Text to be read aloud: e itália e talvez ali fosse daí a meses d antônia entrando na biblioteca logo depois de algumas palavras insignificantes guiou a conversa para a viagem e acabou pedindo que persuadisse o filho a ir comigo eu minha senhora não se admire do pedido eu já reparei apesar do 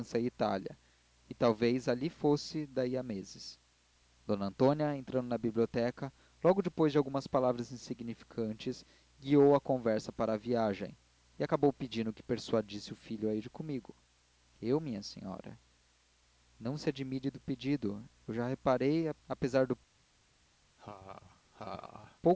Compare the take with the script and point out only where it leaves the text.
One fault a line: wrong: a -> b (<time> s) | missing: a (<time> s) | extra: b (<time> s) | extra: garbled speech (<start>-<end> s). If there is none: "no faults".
no faults